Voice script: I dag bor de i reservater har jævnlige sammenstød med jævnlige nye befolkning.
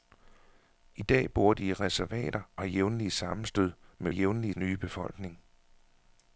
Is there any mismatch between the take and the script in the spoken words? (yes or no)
no